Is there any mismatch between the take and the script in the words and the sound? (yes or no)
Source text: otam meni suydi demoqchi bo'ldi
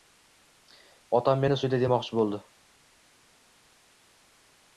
no